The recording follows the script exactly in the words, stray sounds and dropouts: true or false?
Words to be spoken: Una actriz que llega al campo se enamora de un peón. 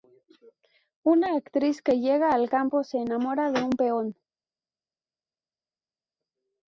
true